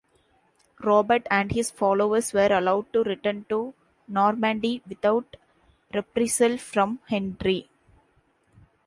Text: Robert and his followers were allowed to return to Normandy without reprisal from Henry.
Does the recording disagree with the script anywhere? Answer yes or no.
no